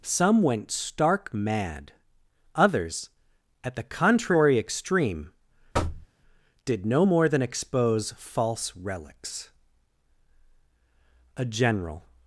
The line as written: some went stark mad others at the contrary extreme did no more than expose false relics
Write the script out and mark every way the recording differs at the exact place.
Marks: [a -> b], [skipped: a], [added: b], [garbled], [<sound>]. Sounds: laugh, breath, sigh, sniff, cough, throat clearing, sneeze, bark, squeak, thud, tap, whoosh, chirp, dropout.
some went stark mad others at the contrary extreme [thud] did no more than expose false relics [added: a general]